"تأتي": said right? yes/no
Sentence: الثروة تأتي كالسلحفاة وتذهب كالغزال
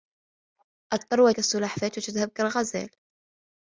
no